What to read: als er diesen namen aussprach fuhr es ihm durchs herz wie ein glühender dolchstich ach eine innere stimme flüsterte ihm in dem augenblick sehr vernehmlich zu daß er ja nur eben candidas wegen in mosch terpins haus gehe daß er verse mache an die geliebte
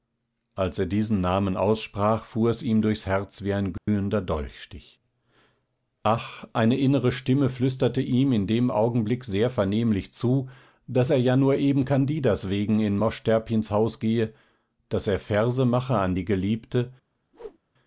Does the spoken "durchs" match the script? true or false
true